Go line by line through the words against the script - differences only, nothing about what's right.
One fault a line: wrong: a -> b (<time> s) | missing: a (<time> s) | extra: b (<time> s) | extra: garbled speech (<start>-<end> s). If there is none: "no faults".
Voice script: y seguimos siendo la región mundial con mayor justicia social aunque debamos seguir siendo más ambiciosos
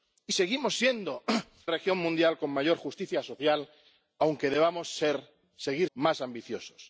missing: la (1.2 s)
missing: siendo (5.9 s)